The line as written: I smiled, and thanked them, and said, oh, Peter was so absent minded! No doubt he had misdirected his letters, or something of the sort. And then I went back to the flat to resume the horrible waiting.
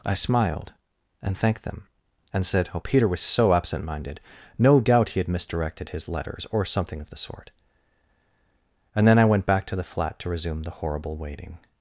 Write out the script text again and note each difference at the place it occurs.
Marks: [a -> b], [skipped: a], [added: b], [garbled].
I smiled, and thanked them, and said, oh, Peter was so absent minded! No doubt he had misdirected his letters, or something of the sort. And then I went back to the flat to resume the horrible waiting.